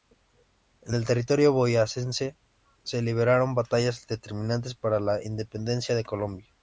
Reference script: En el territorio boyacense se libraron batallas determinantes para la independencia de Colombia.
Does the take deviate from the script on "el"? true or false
false